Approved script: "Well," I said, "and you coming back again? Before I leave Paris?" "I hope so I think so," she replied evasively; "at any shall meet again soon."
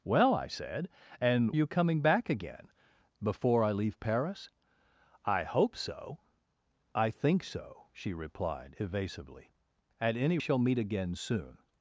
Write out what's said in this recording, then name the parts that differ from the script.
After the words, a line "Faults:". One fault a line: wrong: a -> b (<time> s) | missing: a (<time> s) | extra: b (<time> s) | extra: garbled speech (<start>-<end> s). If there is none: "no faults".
"Well," I said, "and you coming back again? Before I leave Paris?" "I hope so I think so," she replied evasively; "at any shall meet again soon."
Faults:
no faults